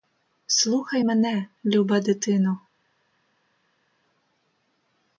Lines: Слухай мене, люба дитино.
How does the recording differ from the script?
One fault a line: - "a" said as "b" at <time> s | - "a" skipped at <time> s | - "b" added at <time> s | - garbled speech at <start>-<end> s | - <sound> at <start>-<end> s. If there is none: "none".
none